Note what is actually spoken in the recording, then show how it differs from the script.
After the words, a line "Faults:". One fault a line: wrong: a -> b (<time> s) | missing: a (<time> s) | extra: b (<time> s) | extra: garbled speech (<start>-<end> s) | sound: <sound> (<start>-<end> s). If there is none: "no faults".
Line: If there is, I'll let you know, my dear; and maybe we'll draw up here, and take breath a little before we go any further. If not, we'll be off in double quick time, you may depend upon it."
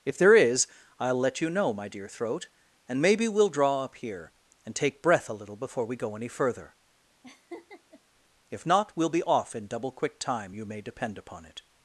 If there is, I'll let you know, my dear; throat and maybe we'll draw up here, and take breath a little before we go any further. If not, we'll be off in double quick time, you may depend upon it."
Faults:
extra: throat (2.1 s)
sound: laugh (7.2-8.0 s)